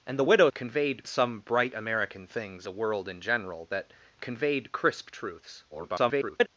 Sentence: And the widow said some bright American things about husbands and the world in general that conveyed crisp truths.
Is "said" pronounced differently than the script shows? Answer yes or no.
yes